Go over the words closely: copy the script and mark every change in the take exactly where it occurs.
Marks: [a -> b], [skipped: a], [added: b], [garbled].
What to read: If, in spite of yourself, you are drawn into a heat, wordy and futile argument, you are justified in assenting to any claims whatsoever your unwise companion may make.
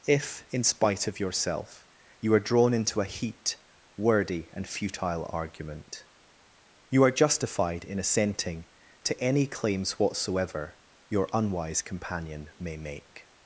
If, in spite of yourself, you are drawn into a heat, wordy and futile argument, you are justified in assenting to any claims whatsoever your unwise companion may make.